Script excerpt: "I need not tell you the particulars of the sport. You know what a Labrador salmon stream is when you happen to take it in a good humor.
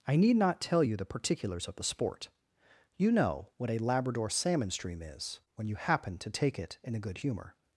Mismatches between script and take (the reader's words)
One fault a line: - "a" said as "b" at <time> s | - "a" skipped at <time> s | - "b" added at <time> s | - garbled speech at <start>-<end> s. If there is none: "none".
none